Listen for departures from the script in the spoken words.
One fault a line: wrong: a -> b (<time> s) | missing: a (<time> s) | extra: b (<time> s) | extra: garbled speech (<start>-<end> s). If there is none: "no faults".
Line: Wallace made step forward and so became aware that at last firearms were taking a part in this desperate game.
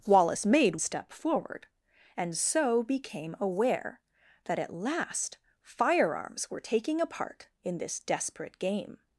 no faults